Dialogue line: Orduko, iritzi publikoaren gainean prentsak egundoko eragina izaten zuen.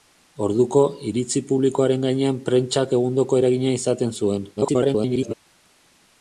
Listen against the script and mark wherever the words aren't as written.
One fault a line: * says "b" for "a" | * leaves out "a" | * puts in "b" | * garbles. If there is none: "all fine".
* garbles